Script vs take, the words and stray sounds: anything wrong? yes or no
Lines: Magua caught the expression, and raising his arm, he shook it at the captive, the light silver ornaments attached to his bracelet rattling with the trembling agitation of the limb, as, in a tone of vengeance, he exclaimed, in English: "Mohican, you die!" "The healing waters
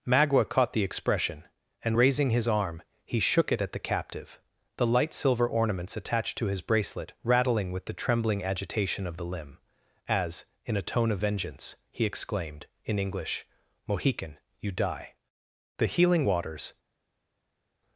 no